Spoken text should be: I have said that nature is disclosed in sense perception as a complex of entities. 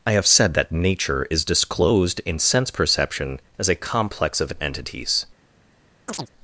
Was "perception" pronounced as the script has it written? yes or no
yes